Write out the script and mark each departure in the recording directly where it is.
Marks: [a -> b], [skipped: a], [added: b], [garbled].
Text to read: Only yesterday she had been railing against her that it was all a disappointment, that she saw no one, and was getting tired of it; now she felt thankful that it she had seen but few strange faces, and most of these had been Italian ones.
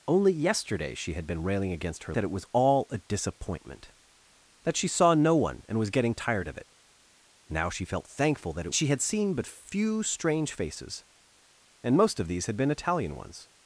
Only yesterday she had been railing against her that it was all a disappointment, that she saw no one, and was getting tired of it; now she felt thankful that it she had seen but few strange faces, and most of these had been Italian ones.